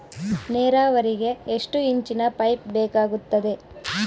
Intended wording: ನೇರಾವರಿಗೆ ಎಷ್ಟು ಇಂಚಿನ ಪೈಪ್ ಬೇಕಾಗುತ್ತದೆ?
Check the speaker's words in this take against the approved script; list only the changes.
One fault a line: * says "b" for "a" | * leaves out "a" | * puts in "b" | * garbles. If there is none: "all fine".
all fine